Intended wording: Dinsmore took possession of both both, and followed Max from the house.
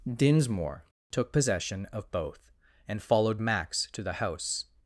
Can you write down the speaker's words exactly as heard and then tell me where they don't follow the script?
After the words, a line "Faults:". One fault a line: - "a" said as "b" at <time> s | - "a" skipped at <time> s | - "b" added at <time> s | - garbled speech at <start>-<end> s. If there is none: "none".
Dinsmore took possession of both, and followed Max to the house.
Faults:
- "both" skipped at 2.5 s
- "from" said as "to" at 3.9 s